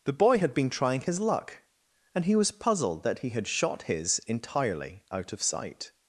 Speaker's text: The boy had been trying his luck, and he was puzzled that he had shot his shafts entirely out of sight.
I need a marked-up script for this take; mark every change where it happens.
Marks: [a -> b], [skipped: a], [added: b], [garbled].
The boy had been trying his luck, and he was puzzled that he had shot his [skipped: shafts] entirely out of sight.